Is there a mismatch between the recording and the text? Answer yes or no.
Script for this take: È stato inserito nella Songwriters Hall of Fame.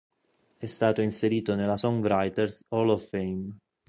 no